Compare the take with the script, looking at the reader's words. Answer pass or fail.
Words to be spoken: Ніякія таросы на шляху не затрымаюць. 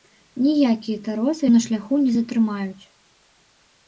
pass